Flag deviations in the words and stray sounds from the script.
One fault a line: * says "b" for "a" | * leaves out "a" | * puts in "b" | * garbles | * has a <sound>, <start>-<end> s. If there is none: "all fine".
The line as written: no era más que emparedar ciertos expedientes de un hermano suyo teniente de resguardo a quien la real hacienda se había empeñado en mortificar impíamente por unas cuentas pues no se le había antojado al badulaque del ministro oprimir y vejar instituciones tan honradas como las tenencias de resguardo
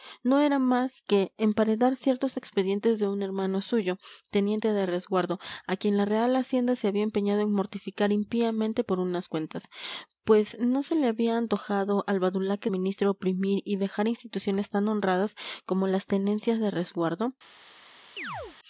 * leaves out "del"
* has a chirp, 18.2-18.6 s